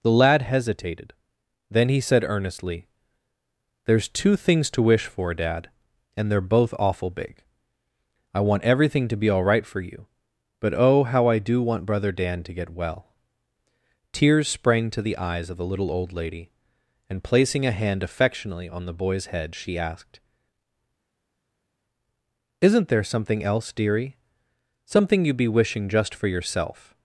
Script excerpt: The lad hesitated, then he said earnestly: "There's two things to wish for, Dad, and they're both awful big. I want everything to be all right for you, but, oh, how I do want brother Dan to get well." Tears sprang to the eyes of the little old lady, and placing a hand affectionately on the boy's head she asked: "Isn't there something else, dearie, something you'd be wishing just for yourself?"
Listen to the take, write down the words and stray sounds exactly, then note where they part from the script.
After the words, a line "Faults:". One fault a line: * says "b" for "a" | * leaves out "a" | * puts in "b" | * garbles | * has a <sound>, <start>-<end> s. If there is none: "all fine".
The lad hesitated, then he said earnestly: "There's two things to wish for, Dad, and they're both awful big. I want everything to be all right for you, but, oh, how I do want brother Dan to get well." Tears sprang to the eyes of the little old lady, and placing a hand affectionately on the boy's head she asked: "Isn't there something else, dearie, something you'd be wishing just for yourself?"
Faults:
all fine